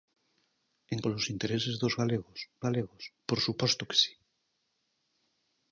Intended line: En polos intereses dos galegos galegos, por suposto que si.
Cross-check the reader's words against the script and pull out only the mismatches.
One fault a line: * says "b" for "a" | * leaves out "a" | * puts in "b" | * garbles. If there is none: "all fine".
all fine